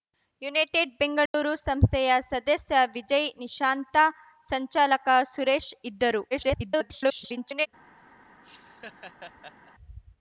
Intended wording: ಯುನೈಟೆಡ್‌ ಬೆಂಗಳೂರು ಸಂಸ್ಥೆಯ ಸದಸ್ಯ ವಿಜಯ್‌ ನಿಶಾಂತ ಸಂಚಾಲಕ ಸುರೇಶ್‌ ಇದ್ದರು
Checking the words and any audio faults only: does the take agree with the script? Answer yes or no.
no